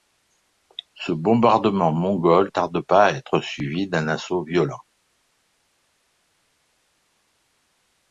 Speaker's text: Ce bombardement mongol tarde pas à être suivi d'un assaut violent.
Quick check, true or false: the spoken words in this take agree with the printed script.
true